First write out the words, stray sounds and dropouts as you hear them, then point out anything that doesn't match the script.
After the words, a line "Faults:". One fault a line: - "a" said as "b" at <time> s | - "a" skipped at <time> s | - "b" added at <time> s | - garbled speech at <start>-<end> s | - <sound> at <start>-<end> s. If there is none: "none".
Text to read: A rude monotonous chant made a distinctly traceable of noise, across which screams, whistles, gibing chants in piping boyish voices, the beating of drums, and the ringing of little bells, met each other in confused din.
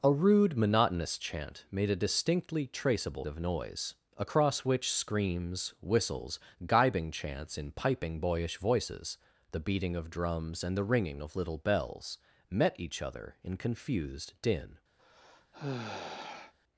A rude monotonous chant made a distinctly traceable of noise, across which screams, whistles, gibing chants in piping boyish voices, the beating of drums, and the ringing of little bells, met each other in confused din.
Faults:
- sigh at 15.0-16.5 s